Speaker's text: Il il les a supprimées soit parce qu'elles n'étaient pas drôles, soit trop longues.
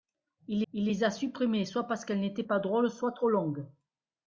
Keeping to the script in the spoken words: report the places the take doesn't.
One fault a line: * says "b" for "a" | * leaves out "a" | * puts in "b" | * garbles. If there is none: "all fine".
all fine